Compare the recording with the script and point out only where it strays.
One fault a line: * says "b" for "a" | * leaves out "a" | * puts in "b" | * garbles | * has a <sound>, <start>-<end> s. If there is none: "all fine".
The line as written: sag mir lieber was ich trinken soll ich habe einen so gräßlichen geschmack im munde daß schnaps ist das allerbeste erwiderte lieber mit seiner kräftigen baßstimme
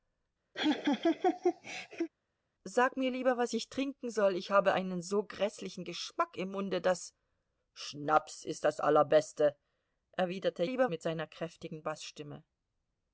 * has a laugh, 0.5-2.1 s